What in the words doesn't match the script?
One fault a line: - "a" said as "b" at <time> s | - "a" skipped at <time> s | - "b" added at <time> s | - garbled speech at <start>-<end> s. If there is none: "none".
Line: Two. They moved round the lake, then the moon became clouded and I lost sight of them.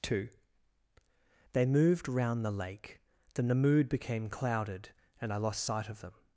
- "moon" said as "mood" at 3.5 s